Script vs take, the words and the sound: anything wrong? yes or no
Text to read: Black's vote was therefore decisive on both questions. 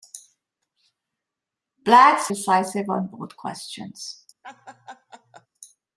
yes